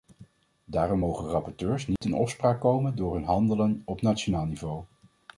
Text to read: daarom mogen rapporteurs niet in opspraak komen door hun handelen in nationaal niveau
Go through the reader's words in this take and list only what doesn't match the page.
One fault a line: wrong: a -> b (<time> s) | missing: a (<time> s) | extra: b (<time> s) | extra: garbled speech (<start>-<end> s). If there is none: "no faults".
wrong: in -> op (3.9 s)